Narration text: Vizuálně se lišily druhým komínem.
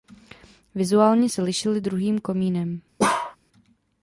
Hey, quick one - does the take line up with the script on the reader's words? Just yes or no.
yes